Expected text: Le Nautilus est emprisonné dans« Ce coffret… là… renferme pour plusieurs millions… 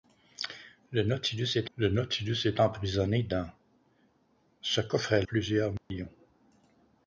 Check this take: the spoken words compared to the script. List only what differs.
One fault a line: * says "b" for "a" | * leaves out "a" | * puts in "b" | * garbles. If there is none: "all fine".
* puts in "le Nautilus est"
* leaves out "là renferme pour"